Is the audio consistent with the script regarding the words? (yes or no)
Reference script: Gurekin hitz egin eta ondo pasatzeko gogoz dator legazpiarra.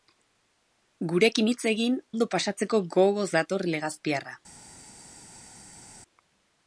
no